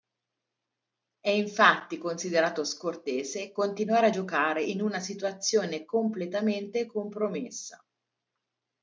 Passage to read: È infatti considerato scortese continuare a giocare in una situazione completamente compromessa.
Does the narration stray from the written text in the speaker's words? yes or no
no